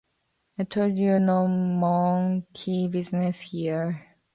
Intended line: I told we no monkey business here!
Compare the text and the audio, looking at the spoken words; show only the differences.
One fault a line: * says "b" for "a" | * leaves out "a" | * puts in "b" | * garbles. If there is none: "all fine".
* says "you" for "we"